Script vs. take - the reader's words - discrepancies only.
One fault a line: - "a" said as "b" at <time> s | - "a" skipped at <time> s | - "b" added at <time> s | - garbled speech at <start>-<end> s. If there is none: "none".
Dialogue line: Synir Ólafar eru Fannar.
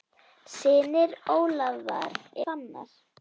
- "eru" skipped at 2.1 s